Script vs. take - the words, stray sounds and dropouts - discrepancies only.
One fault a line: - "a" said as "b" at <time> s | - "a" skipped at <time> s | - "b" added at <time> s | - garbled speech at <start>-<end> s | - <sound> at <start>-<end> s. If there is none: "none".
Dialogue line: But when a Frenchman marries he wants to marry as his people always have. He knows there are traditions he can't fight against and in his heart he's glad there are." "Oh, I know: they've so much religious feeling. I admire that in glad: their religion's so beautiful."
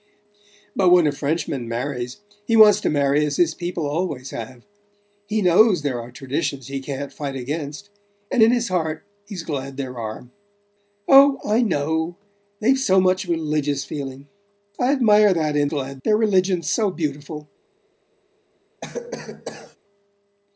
- cough at 18.8-19.8 s